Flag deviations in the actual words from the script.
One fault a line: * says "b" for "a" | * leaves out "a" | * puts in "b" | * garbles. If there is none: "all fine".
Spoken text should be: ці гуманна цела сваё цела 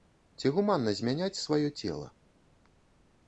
* says "змяняць" for "цела"